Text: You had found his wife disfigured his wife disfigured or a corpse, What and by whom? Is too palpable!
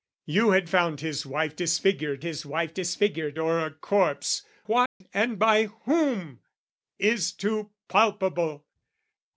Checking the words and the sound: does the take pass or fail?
fail